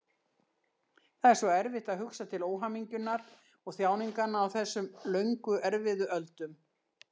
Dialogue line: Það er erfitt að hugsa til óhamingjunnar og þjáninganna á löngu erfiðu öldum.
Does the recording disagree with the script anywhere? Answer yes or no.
yes